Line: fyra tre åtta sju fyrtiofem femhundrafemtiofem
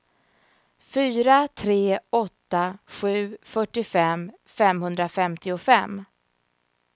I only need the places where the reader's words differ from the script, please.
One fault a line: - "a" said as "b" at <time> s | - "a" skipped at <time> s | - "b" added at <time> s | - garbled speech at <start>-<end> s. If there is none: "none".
none